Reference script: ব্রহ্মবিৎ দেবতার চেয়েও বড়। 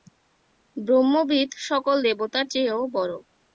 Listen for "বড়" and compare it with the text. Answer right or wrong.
right